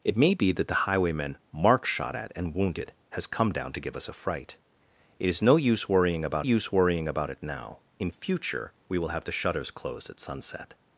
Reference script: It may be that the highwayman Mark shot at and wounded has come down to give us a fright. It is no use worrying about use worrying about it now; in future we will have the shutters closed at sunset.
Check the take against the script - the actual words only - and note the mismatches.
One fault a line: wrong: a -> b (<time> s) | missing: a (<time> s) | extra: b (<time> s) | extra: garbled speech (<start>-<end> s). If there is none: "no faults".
no faults